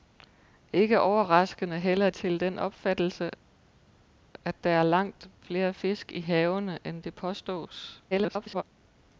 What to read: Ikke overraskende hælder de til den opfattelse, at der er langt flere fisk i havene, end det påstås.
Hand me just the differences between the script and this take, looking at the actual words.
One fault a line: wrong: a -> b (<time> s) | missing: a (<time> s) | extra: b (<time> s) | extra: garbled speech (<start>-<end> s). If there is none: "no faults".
missing: de (2.1 s)
extra: garbled speech (8.1-8.6 s)